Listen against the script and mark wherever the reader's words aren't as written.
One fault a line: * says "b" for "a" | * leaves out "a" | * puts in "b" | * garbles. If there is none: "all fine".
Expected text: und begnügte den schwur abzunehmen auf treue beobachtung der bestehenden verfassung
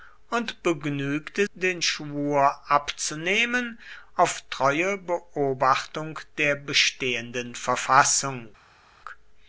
all fine